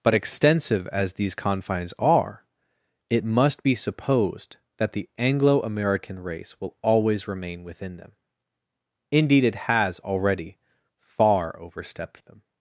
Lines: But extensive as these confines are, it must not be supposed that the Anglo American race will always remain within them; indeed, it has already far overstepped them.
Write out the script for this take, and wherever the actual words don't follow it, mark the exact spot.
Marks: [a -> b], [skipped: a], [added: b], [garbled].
But extensive as these confines are, it must [skipped: not] be supposed that the Anglo American race will always remain within them; indeed, it has already far overstepped them.